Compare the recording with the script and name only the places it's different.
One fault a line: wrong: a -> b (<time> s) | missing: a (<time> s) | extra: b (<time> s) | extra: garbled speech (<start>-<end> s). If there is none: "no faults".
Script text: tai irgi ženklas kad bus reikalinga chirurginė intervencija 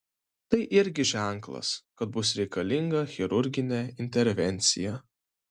no faults